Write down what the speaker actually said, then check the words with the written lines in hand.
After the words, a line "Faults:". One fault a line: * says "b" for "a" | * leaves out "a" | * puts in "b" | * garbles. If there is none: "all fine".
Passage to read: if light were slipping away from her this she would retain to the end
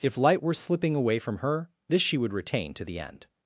if light were slipping away from her this she would retain to the end
Faults:
all fine